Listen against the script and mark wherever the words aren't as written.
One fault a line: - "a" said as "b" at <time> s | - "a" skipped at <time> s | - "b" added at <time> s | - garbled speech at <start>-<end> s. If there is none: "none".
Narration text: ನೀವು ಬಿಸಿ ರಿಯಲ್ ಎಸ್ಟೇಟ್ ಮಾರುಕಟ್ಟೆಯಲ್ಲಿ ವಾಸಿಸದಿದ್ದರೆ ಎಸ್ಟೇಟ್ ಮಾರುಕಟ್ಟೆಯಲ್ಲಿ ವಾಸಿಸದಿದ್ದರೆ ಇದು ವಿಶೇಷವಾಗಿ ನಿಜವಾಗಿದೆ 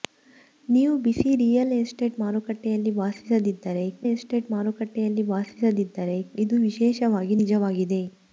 none